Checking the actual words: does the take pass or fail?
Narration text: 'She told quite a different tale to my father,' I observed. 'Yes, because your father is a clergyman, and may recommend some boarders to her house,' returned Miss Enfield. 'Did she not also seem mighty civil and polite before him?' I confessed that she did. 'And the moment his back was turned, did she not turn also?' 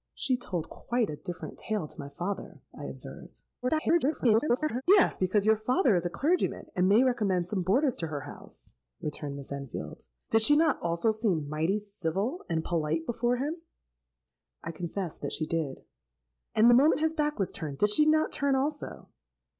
fail